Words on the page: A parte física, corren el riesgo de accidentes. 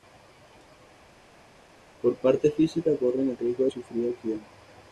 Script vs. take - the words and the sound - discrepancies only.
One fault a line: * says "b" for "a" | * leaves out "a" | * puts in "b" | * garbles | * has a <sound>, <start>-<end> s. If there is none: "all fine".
* says "Por" for "A"
* puts in "sufrir"